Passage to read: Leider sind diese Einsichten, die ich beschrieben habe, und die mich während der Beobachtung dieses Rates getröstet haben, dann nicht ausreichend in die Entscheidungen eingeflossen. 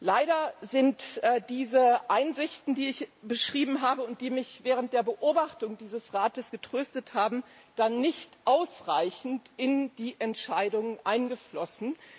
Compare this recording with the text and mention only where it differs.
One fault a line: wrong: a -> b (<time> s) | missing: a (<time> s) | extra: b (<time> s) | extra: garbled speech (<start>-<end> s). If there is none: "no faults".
no faults